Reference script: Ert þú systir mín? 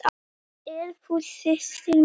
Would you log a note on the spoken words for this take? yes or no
no